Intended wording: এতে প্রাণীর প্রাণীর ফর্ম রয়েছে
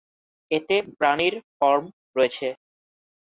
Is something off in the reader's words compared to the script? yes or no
yes